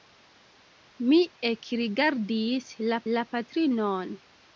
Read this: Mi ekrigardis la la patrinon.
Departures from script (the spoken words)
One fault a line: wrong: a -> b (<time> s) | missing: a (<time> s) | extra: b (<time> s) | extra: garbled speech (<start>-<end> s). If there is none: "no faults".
no faults